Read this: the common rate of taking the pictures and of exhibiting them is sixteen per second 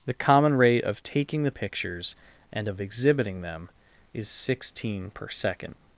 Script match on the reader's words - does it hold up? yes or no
yes